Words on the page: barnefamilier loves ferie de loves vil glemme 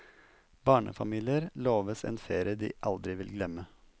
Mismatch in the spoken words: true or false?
true